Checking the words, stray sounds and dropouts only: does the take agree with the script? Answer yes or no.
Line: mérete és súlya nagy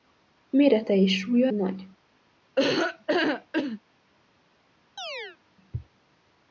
no